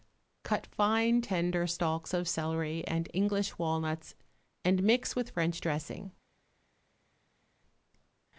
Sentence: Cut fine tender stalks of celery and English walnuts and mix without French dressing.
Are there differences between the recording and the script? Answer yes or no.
yes